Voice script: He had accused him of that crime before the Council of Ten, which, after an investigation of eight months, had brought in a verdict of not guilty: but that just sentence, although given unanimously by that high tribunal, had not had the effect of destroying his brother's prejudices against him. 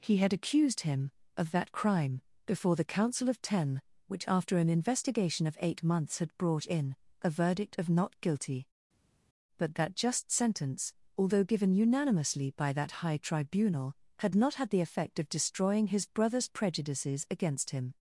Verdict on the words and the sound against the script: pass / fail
pass